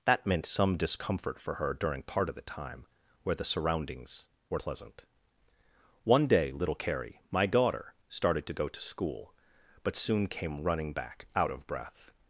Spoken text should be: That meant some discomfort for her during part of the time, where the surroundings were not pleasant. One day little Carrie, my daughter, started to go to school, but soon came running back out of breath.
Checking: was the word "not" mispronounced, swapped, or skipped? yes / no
yes